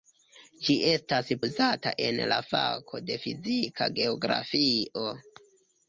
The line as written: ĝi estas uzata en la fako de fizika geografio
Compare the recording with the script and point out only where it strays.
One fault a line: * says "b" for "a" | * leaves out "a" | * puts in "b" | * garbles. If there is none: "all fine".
all fine